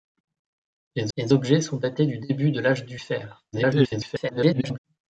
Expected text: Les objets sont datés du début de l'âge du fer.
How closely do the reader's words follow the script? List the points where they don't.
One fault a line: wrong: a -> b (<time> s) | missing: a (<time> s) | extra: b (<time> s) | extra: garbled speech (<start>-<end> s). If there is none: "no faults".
extra: les (1.2 s)
extra: garbled speech (3.5-4.8 s)